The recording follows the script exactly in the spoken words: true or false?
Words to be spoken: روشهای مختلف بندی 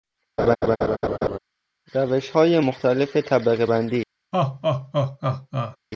false